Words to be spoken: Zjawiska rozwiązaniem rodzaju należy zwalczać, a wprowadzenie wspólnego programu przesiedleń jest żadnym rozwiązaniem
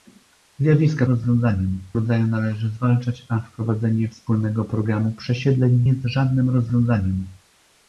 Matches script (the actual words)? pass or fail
pass